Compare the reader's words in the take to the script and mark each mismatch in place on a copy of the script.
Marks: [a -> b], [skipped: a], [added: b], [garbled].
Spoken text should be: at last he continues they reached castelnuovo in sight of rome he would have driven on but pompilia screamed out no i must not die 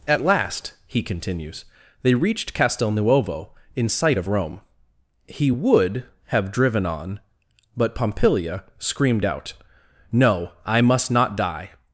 at last he continues they reached castelnuovo in sight of rome he would have driven on but pompilia screamed out no i must not die